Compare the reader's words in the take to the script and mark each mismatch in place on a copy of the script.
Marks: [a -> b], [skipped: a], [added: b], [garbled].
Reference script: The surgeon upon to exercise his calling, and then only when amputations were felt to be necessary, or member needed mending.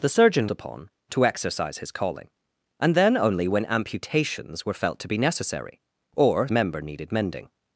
The surgeon upon to exercise his calling, and then only when amputations were felt to be necessary, or member needed mending.